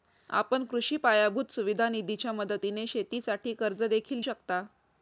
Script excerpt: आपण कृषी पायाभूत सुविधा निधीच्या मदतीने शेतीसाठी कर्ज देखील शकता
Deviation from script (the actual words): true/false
false